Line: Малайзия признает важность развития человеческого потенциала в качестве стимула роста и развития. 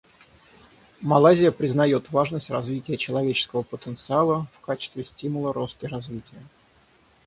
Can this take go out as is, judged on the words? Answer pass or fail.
fail